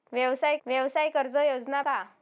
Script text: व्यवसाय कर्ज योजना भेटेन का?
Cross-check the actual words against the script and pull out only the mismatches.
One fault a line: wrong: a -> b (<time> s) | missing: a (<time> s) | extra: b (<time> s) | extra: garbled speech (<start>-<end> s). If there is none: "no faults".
extra: व्यवसाय (0.7 s)
missing: भेटेन (1.8 s)